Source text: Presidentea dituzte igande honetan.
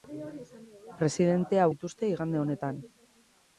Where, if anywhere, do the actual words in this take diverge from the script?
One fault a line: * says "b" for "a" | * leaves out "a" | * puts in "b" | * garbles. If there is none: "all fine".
all fine